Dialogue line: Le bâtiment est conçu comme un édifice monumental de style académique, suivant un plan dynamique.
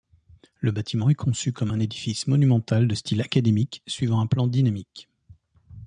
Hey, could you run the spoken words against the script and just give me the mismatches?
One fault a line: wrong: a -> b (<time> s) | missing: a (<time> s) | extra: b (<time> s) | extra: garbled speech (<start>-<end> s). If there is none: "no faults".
no faults